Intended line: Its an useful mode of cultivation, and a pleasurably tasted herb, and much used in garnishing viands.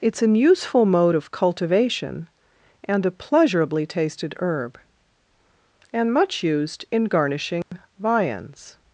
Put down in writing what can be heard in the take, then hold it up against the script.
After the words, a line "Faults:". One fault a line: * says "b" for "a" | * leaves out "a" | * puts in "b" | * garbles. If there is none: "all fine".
Its an useful mode of cultivation, and a pleasurably tasted herb, and much used in garnishing viands.
Faults:
all fine